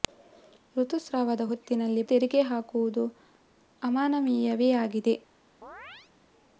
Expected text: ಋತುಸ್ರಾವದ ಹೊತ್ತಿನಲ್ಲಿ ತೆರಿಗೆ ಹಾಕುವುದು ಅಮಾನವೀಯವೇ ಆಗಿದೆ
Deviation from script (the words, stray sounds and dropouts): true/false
true